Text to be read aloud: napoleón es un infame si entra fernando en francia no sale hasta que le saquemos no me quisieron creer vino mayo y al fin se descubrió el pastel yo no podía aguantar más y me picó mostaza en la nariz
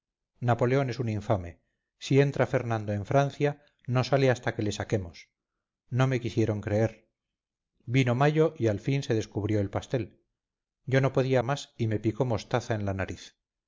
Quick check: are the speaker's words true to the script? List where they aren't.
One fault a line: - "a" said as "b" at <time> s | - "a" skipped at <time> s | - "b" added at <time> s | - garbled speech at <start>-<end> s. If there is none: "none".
- "aguantar" skipped at 11.4 s